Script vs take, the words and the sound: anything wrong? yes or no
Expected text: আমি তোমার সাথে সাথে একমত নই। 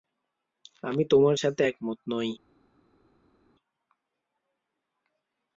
yes